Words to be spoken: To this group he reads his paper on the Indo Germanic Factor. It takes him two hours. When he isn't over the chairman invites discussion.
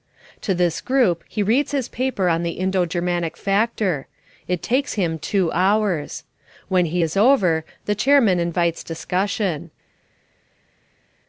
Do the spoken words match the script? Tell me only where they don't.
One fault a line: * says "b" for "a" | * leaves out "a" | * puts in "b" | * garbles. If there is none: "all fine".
* says "is" for "isn't"